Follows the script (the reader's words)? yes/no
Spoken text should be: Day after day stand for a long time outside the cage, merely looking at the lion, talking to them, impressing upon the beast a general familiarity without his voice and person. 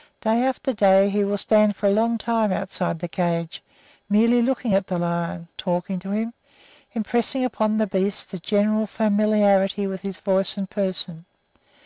no